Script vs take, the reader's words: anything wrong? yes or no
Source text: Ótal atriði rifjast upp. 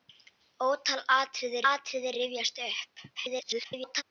yes